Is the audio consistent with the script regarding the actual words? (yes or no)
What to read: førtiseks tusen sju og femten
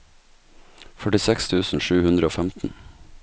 no